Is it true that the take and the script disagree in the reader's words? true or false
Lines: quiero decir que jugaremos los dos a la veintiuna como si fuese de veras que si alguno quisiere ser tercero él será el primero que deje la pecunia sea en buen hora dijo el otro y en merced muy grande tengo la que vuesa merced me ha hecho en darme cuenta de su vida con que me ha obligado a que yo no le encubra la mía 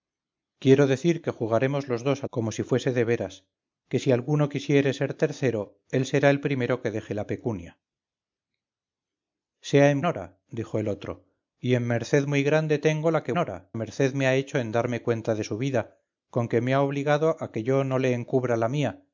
true